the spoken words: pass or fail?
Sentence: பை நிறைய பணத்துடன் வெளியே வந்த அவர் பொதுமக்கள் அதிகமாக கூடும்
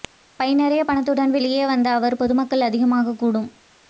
pass